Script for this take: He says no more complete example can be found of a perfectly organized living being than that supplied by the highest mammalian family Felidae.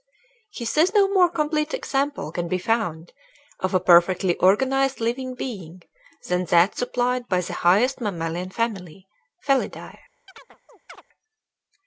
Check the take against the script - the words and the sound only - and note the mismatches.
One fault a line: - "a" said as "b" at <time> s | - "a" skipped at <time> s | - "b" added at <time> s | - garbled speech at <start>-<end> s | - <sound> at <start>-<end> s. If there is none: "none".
- chirp at 10.3-11.0 s